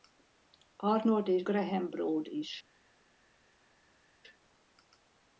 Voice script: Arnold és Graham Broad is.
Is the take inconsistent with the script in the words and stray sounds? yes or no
no